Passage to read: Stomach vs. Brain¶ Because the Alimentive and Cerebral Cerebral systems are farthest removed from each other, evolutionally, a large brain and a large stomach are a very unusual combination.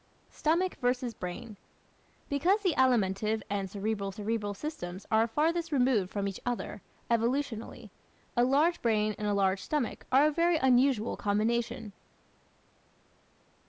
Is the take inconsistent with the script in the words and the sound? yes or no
no